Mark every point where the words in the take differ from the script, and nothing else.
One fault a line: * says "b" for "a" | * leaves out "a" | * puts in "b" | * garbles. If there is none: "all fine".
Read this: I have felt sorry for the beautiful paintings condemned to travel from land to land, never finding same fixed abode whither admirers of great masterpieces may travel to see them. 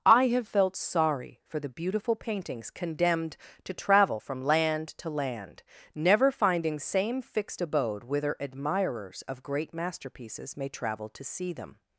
all fine